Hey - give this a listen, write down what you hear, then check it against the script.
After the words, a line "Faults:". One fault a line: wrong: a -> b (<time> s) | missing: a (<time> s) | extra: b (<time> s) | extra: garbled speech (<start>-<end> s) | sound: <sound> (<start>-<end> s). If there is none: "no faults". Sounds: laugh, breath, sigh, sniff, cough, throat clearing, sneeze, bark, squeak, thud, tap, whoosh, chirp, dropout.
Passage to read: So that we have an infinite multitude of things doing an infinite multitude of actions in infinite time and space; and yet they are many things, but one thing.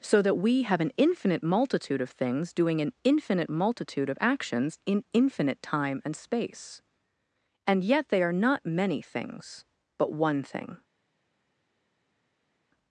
So that we have an infinite multitude of things doing an infinite multitude of actions in infinite time and space; and yet they are not many things, but one thing.
Faults:
extra: not (8.3 s)